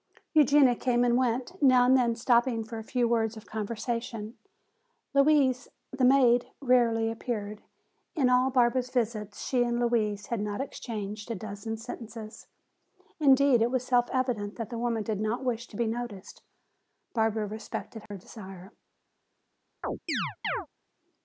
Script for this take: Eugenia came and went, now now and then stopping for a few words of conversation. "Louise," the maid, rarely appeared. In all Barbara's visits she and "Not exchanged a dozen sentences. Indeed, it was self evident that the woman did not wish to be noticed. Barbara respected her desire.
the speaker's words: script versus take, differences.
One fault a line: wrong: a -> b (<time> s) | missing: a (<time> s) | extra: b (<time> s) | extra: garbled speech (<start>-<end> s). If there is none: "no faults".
missing: now (1.9 s)
extra: Louise had (9.8 s)